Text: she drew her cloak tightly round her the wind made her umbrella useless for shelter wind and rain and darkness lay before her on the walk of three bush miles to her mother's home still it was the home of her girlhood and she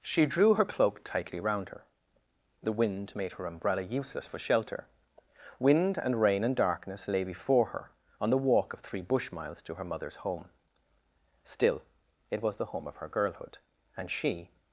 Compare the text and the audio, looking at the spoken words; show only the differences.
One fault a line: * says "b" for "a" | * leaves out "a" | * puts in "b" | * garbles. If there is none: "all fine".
all fine